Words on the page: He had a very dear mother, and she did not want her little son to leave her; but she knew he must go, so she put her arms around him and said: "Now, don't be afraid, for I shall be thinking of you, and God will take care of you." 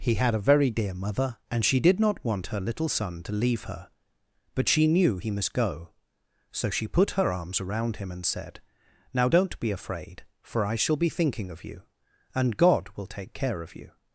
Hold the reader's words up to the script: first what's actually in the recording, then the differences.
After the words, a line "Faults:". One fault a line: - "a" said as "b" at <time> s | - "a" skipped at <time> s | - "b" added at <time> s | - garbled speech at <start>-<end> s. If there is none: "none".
He had a very dear mother, and she did not want her little son to leave her; but she knew he must go, so she put her arms around him and said: "Now, don't be afraid, for I shall be thinking of you, and God will take care of you."
Faults:
none